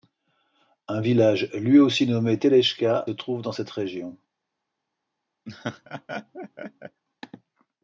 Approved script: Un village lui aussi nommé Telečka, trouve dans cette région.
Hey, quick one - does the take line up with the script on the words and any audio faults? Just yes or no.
no